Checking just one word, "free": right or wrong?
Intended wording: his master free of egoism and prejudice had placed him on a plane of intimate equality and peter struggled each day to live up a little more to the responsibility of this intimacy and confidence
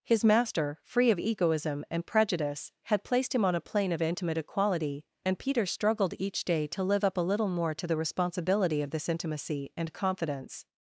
right